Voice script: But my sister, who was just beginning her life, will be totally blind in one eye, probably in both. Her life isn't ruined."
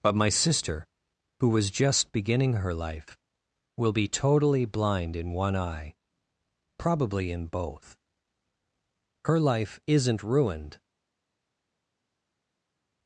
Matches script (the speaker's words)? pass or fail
pass